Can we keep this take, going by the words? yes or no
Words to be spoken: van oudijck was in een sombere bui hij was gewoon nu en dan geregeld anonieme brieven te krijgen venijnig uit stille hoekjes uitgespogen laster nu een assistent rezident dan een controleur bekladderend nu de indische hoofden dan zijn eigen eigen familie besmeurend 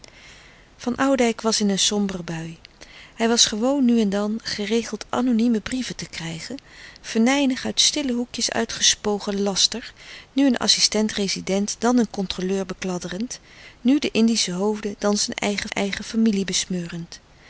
yes